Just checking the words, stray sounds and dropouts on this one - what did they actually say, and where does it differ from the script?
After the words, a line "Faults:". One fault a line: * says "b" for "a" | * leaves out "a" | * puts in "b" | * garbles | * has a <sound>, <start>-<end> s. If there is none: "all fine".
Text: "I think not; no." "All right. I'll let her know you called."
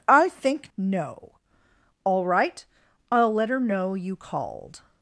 "I think; no." "All right. I'll let her know you called."
Faults:
* leaves out "not"